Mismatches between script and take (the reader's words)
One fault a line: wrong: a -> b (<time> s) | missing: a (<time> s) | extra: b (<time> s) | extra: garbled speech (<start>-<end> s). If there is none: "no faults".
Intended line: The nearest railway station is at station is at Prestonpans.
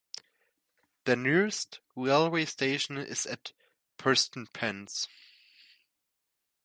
missing: station is at (3.5 s)